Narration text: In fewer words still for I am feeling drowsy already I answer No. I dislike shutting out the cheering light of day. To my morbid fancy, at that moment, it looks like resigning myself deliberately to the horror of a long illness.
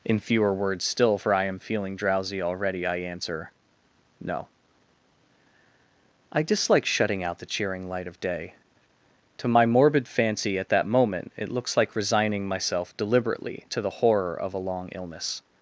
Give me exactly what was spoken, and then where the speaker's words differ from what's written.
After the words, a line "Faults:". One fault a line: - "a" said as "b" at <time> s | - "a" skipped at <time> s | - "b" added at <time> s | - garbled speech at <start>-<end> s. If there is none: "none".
In fewer words still for I am feeling drowsy already I answer No. I dislike shutting out the cheering light of day. To my morbid fancy, at that moment, it looks like resigning myself deliberately to the horror of a long illness.
Faults:
none